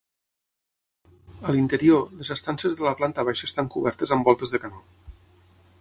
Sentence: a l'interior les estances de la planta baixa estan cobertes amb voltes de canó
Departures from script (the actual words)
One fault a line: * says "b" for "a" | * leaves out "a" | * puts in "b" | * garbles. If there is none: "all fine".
all fine